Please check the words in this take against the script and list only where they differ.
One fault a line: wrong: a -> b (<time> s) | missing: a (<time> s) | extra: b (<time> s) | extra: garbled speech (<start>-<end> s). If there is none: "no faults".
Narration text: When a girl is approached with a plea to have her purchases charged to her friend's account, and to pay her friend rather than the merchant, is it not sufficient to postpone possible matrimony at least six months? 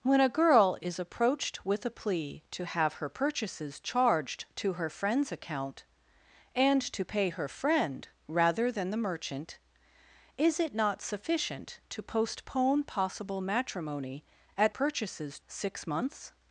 wrong: least -> purchases (14.7 s)